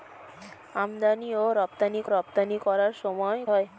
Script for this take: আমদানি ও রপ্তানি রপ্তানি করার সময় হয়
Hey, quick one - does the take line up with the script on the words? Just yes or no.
yes